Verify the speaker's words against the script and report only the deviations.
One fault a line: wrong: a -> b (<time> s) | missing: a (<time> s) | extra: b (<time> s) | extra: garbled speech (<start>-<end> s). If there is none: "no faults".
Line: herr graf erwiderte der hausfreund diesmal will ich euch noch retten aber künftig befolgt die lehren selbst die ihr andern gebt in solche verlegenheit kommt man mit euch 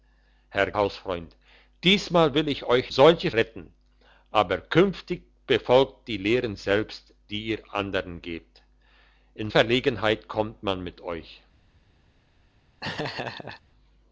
missing: graf erwiderte der (0.7 s)
wrong: noch -> solche (2.9 s)
missing: solche (9.5 s)